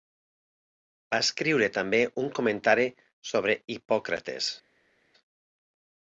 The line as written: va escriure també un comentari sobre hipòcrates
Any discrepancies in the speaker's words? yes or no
no